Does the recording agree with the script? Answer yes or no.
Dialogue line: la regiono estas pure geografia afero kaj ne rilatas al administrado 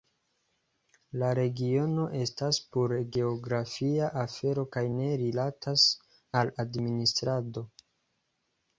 yes